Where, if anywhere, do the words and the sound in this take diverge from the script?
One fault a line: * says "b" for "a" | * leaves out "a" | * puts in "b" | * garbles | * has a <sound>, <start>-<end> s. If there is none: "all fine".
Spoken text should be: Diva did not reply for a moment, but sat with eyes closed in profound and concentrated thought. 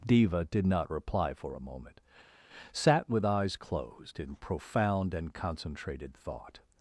* leaves out "but"